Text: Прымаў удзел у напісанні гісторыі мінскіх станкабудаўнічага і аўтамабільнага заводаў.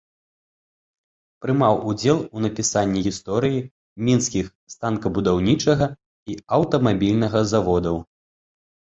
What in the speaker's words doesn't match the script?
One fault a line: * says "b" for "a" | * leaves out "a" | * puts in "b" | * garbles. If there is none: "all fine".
all fine